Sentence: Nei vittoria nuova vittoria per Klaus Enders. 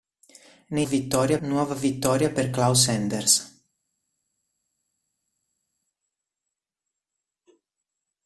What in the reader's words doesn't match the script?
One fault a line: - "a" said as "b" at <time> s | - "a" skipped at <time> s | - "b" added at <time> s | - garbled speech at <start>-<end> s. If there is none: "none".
none